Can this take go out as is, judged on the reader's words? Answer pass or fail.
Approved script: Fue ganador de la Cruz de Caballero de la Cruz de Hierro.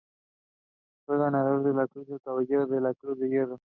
pass